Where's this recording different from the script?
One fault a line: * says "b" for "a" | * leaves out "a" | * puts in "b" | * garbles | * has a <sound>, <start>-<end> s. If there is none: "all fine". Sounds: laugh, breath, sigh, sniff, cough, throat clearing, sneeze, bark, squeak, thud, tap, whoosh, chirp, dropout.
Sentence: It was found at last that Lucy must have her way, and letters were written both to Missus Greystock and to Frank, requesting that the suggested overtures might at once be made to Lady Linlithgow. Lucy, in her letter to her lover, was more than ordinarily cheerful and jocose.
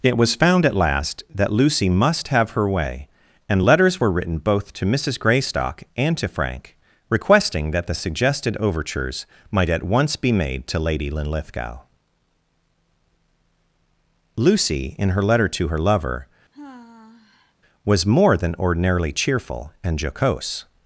* has a sigh, 16.5-17.5 s